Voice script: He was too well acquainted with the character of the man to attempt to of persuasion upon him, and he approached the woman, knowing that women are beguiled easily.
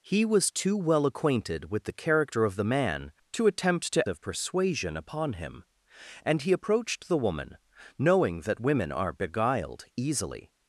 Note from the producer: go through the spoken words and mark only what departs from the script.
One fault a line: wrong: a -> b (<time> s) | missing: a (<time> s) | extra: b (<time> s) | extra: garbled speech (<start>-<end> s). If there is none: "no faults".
no faults